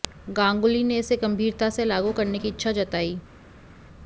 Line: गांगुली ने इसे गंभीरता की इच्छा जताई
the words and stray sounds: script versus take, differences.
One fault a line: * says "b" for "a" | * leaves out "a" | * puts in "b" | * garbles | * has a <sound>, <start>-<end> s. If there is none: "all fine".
* puts in "से लागू करने"